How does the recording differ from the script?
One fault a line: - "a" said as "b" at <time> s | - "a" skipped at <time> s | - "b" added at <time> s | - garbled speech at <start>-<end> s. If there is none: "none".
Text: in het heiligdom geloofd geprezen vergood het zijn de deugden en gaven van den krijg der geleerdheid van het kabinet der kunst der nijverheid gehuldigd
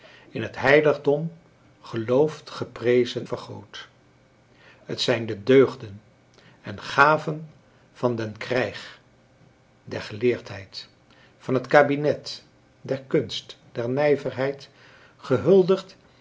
none